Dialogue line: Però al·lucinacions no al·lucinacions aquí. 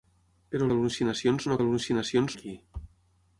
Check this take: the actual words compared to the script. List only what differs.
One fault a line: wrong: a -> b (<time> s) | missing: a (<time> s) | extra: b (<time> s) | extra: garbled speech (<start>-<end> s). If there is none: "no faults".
no faults